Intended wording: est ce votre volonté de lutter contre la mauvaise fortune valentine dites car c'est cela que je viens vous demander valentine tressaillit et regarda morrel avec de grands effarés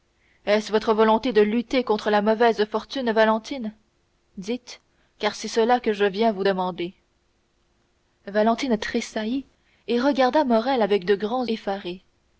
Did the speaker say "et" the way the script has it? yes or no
yes